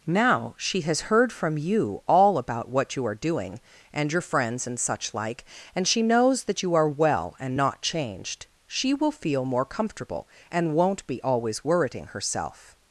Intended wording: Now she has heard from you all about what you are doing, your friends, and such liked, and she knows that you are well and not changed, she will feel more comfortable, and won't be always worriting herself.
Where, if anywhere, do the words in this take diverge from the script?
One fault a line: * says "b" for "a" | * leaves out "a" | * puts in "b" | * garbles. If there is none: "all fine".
* puts in "and"
* says "like" for "liked"